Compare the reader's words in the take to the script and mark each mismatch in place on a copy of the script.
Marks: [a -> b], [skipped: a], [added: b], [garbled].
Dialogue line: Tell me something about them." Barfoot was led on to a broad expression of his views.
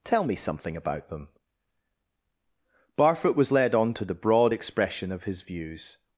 Tell me something about them." Barfoot was led on to [a -> the] broad expression of his views.